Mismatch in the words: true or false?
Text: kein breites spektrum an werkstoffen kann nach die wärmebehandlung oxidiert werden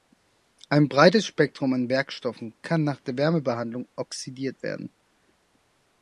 true